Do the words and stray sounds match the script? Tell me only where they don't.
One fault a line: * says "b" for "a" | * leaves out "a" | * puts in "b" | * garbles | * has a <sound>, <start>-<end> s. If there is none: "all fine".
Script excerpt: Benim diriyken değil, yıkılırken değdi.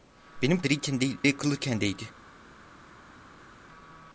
all fine